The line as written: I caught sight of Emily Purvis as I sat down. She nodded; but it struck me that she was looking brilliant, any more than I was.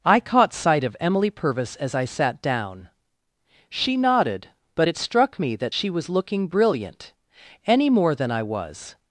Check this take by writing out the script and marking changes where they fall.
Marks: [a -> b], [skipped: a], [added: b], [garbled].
I caught sight of Emily Purvis as I sat down. She nodded; but it struck me that she was looking brilliant, any more than I was.